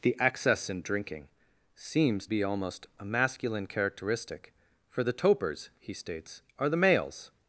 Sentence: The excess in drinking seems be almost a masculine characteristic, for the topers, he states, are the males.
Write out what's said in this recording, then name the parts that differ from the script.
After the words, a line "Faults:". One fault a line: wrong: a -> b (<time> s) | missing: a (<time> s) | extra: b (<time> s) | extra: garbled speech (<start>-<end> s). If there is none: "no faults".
The excess in drinking seems be almost a masculine characteristic, for the topers, he states, are the males.
Faults:
no faults